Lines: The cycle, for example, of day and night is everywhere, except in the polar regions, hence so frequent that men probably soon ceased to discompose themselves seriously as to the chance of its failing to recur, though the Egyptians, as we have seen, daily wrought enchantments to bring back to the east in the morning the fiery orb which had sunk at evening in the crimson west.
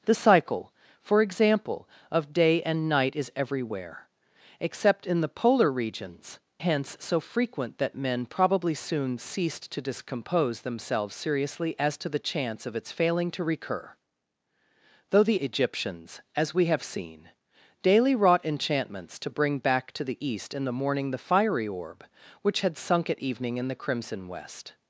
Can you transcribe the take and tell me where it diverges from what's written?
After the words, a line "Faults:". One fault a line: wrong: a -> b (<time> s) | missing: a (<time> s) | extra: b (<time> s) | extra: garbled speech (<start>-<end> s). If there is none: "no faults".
The cycle, for example, of day and night is everywhere, except in the polar regions, hence so frequent that men probably soon ceased to discompose themselves seriously as to the chance of its failing to recur, though the Egyptians, as we have seen, daily wrought enchantments to bring back to the east in the morning the fiery orb which had sunk at evening in the crimson west.
Faults:
no faults